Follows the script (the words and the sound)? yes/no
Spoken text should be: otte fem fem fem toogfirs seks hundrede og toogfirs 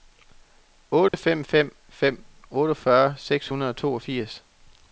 no